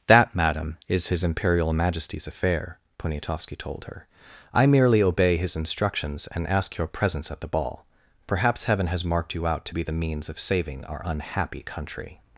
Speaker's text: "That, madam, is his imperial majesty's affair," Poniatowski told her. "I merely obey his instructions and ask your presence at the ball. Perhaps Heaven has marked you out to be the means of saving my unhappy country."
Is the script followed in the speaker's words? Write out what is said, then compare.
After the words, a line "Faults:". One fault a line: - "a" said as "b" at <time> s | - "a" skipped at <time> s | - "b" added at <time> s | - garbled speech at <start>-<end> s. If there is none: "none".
"That, madam, is his imperial majesty's affair," Poniatowski told her. "I merely obey his instructions and ask your presence at the ball. Perhaps Heaven has marked you out to be the means of saving our unhappy country."
Faults:
- "my" said as "our" at 10.8 s